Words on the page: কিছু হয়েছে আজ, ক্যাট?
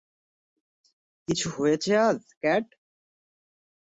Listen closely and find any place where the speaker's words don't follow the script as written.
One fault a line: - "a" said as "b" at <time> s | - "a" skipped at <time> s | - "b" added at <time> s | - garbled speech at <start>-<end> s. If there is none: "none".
none